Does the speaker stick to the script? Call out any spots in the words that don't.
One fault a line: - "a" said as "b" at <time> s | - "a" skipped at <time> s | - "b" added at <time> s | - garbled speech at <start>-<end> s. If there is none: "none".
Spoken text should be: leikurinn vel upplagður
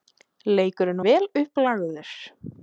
none